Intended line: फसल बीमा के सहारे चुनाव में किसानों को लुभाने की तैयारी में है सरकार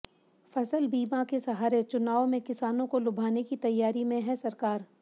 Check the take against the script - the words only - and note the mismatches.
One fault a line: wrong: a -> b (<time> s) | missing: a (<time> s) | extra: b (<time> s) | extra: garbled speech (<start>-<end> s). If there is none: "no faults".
no faults